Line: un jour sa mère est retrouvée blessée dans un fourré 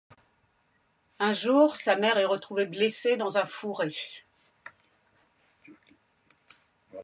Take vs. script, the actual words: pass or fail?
pass